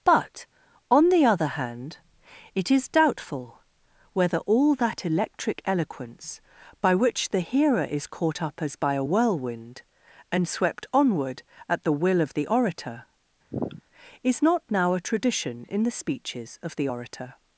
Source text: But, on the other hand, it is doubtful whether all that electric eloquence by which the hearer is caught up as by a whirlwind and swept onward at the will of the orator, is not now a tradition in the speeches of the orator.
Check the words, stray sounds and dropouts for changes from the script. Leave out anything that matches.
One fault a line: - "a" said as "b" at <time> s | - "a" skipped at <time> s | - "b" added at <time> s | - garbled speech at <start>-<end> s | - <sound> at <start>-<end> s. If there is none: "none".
- sniff at 13.5-13.8 s